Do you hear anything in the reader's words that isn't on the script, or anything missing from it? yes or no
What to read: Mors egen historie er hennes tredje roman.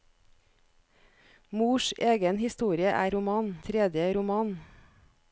yes